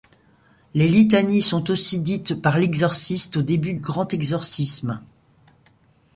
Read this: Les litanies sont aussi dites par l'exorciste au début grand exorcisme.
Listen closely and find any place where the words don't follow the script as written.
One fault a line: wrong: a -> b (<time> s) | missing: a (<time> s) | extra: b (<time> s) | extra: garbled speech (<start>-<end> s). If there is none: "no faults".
no faults